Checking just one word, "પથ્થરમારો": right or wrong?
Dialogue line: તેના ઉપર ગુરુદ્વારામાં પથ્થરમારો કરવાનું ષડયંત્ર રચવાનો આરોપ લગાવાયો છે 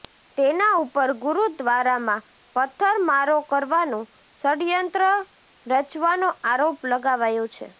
right